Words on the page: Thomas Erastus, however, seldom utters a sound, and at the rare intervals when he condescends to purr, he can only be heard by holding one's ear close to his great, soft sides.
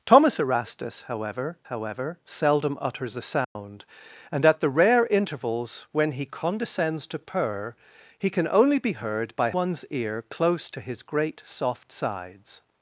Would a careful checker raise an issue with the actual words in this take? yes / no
yes